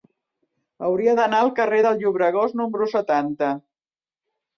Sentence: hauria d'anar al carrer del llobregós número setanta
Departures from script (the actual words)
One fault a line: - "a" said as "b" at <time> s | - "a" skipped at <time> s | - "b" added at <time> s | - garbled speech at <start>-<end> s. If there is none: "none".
none